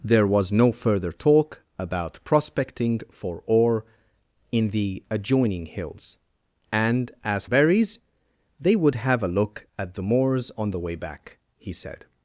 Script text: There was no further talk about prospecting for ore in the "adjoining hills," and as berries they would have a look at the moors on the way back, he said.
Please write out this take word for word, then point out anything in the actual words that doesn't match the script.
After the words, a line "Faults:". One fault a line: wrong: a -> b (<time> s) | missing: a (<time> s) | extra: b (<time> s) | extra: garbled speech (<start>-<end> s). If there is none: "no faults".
There was no further talk about prospecting for ore in the "adjoining hills," and as berries they would have a look at the moors on the way back, he said.
Faults:
no faults